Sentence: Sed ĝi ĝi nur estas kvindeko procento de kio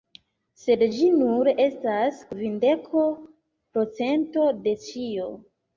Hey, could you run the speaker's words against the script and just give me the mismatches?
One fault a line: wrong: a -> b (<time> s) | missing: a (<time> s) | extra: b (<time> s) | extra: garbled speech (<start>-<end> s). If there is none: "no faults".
missing: ĝi (1.1 s)
wrong: kio -> ĉio (4.9 s)